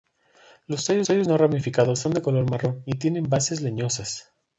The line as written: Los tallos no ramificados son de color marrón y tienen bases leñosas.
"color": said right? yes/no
yes